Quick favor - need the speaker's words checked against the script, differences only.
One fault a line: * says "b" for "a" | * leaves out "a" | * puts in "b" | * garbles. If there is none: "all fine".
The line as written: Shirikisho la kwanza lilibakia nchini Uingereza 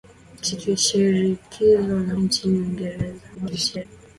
* leaves out "kwanza lilibakia"
* garbles